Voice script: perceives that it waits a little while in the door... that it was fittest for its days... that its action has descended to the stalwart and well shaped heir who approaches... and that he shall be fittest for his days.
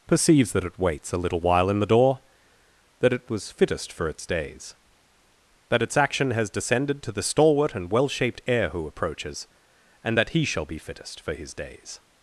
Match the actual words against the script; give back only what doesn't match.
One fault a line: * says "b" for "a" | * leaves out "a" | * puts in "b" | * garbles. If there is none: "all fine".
all fine